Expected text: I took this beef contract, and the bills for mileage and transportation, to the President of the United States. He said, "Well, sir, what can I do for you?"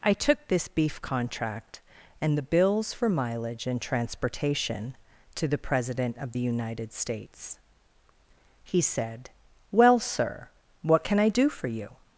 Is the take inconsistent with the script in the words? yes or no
no